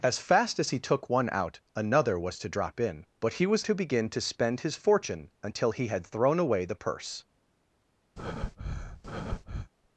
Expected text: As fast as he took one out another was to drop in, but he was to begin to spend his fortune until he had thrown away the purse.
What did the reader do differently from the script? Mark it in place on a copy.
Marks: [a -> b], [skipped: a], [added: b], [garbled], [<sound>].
As fast as he took one out another was to drop in, but he was to begin to spend his fortune until he had thrown away the purse. [breath]